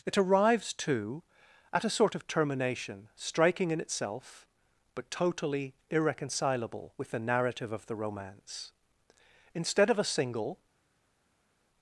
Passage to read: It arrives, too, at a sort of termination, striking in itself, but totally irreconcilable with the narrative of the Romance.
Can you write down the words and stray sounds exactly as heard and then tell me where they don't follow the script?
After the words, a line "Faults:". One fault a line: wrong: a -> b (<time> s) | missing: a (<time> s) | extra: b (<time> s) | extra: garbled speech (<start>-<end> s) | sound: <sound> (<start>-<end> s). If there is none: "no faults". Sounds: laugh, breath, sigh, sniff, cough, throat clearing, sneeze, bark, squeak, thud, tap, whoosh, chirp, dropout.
It arrives, too, at a sort of termination, striking in itself, but totally irreconcilable with the narrative of the Romance. Instead of a single
Faults:
extra: Instead of a single (9.5 s)